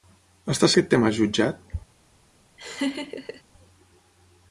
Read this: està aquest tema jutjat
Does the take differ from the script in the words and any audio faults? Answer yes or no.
yes